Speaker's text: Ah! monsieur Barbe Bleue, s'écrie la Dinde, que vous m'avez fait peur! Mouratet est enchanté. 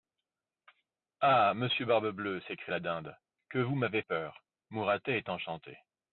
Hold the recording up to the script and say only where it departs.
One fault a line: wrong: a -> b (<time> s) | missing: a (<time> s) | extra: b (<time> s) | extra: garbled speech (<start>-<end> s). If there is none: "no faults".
missing: fait (4.0 s)